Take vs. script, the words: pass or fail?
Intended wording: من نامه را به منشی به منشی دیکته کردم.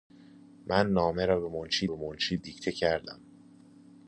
pass